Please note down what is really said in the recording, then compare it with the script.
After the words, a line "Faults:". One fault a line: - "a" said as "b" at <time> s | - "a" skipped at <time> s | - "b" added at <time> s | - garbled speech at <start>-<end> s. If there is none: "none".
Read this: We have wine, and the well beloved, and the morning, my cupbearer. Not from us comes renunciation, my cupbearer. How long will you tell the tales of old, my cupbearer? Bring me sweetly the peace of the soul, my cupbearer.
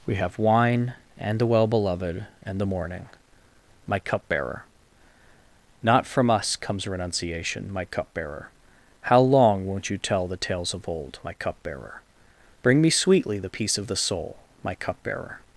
We have wine, and the well beloved, and the morning, my cupbearer. Not from us comes renunciation, my cupbearer. How long won't you tell the tales of old, my cupbearer? Bring me sweetly the peace of the soul, my cupbearer.
Faults:
- "will" said as "won't" at 9.7 s